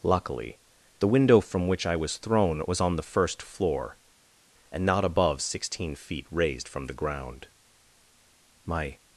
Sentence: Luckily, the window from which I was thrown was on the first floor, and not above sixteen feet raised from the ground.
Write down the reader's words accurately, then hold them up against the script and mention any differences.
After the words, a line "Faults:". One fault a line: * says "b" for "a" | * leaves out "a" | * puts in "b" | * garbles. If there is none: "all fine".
Luckily, the window from which I was thrown was on the first floor, and not above sixteen feet raised from the ground. My
Faults:
* puts in "My"